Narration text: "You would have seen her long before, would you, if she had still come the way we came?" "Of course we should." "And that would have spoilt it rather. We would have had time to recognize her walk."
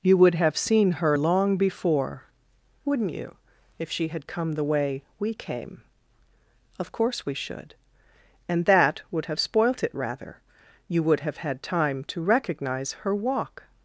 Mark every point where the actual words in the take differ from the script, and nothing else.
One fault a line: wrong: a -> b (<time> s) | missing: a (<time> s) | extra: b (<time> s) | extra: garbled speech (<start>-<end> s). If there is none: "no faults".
wrong: would -> wouldn't (2.9 s)
missing: still (4.3 s)
wrong: We -> You (10.9 s)